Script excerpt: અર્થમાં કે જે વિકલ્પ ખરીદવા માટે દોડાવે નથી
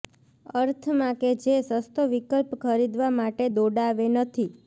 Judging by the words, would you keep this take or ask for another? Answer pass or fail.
fail